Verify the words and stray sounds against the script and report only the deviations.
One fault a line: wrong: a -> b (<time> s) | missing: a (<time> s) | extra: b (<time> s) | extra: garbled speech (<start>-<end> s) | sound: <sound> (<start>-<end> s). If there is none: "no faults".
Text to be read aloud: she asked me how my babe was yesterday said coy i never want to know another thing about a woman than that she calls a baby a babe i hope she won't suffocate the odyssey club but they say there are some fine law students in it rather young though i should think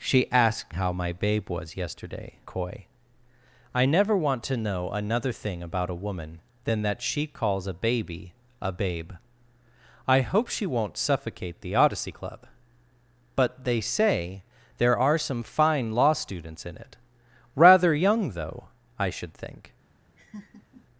missing: me (0.8 s)
missing: said (2.4 s)
sound: laugh (20.2-20.9 s)